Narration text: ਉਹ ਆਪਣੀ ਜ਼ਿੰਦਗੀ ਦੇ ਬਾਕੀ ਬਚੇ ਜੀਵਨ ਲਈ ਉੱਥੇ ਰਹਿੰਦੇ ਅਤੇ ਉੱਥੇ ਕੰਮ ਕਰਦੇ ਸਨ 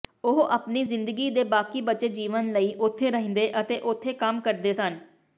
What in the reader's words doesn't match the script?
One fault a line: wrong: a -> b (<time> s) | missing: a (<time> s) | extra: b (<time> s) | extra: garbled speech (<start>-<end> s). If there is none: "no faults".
no faults